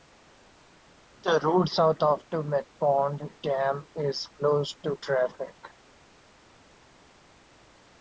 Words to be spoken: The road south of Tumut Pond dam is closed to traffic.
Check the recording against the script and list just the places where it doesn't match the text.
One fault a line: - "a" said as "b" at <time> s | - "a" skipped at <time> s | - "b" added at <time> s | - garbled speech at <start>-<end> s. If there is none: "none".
none